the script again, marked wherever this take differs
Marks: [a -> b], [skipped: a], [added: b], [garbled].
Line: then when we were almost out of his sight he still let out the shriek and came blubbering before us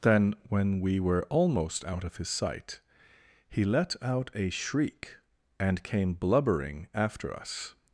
then when we were almost out of his sight he [skipped: still] let out [the -> a] shriek and came blubbering [before -> after] us